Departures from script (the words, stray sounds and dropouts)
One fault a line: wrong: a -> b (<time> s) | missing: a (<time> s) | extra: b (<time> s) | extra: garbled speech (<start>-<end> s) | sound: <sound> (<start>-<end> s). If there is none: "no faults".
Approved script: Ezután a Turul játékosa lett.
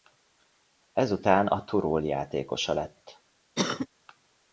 sound: cough (3.6-3.9 s)